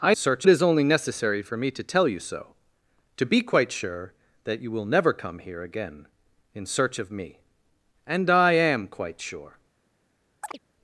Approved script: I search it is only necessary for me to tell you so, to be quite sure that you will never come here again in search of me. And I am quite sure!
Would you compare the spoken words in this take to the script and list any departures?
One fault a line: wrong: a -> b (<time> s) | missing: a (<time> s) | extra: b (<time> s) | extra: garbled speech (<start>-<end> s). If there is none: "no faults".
no faults